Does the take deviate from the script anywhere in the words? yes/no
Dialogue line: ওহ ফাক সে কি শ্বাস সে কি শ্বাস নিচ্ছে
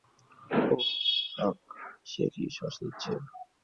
yes